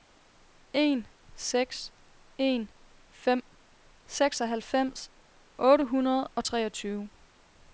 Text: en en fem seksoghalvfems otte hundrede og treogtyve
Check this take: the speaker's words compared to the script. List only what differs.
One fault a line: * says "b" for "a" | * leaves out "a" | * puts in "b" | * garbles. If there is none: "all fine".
* puts in "seks"